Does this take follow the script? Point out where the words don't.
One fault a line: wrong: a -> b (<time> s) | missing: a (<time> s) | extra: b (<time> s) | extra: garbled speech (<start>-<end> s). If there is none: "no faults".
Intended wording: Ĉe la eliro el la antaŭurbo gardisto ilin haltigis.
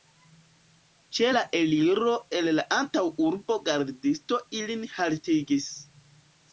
no faults